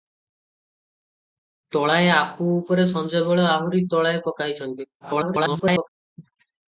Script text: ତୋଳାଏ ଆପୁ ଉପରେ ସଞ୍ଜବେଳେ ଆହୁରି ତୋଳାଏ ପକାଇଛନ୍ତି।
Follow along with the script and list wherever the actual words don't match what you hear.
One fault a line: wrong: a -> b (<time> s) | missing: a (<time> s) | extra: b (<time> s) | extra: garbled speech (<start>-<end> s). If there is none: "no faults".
extra: garbled speech (5.0-5.9 s)